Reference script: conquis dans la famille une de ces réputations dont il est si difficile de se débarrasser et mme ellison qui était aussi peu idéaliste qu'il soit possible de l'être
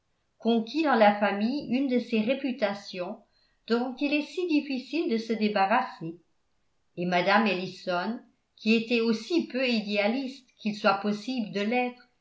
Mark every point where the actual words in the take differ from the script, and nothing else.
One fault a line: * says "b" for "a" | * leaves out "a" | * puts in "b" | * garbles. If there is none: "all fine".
all fine